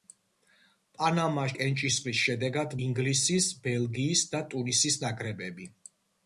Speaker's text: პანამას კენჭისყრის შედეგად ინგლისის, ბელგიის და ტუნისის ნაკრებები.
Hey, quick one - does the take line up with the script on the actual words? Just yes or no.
yes